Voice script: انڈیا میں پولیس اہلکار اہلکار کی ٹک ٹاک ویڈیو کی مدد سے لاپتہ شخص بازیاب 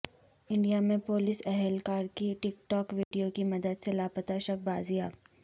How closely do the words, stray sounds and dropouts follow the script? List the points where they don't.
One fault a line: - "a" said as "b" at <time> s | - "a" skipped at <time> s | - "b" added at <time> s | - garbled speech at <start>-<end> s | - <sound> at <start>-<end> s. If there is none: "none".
- "اہلکار" skipped at 2.0 s
- dropout at 3.0-3.1 s